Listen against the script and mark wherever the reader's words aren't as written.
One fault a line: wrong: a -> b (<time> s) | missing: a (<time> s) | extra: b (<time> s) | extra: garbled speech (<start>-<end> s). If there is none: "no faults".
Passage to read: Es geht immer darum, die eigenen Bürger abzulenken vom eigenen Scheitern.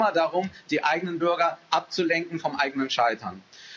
no faults